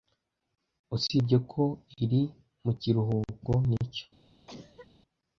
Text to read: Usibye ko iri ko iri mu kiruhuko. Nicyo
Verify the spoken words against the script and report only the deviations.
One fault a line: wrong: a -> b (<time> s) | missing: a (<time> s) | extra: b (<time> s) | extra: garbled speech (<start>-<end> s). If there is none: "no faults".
missing: ko iri (2.2 s)